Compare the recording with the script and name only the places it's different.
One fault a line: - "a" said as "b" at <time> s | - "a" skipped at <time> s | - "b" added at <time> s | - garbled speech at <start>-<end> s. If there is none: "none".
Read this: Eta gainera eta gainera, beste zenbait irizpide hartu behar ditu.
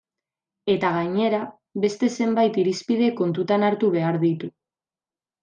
- "eta gainera" skipped at 1.4 s
- "kontutan" added at 3.2 s